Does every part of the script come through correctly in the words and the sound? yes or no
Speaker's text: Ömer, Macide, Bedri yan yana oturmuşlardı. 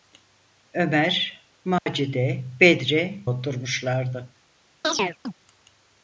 no